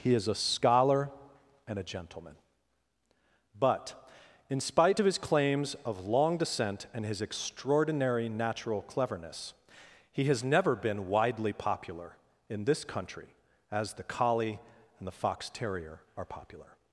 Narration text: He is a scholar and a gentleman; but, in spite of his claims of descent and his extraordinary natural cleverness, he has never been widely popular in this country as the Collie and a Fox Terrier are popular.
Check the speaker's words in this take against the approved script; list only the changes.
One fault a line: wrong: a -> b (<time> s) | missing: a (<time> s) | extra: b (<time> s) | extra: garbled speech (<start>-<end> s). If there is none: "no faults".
extra: long (6.1 s)
wrong: a -> the (15.1 s)